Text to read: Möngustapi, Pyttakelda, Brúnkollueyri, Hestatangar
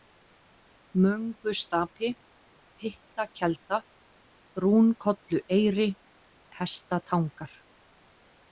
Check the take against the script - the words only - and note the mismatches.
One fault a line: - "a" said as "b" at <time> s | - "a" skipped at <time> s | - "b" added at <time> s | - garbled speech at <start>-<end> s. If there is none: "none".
none